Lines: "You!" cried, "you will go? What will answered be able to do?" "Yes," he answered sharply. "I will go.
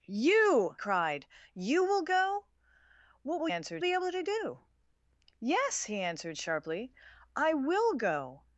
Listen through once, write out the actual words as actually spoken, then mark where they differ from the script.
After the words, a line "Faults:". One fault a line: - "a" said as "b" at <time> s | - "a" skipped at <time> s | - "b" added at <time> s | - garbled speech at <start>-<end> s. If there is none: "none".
"You!" cried, "you will go? What will answered be able to do?" "Yes," he answered sharply. "I will go.
Faults:
none